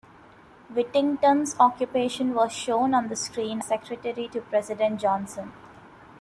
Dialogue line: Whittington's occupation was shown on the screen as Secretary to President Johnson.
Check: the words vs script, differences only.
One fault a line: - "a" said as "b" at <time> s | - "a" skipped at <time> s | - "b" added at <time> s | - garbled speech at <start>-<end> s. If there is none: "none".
- "as" skipped at 3.6 s